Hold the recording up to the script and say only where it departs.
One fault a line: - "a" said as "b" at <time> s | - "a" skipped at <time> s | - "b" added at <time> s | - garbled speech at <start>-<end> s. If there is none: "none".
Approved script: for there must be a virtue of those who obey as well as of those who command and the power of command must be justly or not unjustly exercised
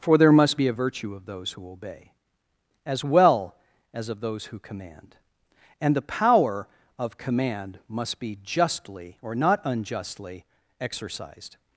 none